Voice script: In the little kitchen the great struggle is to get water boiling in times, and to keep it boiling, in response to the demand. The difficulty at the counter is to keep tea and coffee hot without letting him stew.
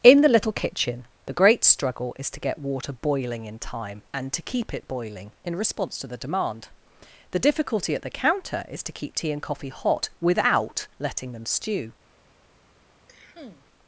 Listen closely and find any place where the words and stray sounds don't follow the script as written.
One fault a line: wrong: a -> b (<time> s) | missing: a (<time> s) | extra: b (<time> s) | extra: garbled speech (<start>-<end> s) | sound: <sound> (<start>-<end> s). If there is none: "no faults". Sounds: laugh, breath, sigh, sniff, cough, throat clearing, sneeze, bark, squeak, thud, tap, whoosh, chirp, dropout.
wrong: times -> time (3.6 s)
wrong: him -> them (11.3 s)
sound: cough (13.1-13.7 s)